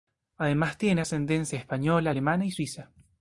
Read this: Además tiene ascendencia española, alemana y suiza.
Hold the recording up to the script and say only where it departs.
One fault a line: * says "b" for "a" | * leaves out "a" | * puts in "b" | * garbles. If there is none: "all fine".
all fine